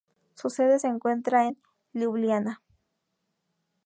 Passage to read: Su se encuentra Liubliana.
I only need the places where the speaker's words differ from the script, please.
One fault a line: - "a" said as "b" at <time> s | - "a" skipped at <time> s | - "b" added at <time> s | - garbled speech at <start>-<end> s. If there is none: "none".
- "sede" added at 0.5 s
- "en" added at 1.5 s